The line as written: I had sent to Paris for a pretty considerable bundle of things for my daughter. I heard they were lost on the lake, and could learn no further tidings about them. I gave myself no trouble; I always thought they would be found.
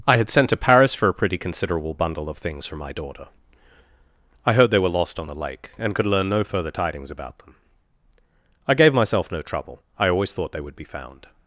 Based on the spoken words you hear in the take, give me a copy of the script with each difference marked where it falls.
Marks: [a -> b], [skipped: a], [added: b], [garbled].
I had sent to Paris for a pretty considerable bundle of things for my daughter. I heard they were lost on the lake, and could learn no further tidings about them. I gave myself no trouble; I always thought they would be found.